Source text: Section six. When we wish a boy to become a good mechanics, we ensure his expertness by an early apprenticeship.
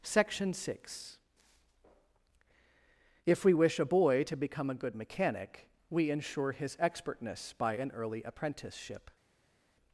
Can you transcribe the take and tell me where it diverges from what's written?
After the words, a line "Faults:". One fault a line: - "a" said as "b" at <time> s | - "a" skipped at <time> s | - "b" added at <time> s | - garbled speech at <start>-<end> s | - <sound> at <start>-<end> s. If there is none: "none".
Section six. If we wish a boy to become a good mechanic, we ensure his expertness by an early apprenticeship.
Faults:
- "When" said as "If" at 3.3 s
- "mechanics" said as "mechanic" at 5.0 s